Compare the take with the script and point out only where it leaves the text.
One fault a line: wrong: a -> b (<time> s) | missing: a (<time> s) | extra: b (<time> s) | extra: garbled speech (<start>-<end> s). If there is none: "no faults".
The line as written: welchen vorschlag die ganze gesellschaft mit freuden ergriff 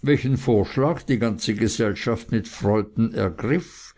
no faults